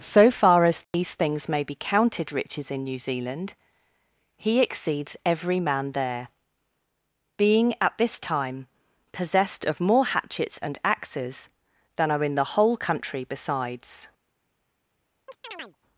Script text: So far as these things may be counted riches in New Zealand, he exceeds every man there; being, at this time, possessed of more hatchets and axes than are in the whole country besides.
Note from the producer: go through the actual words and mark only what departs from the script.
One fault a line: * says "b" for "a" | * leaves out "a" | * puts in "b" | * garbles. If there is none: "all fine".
all fine